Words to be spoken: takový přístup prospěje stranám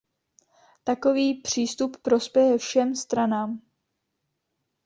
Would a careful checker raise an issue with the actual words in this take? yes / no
yes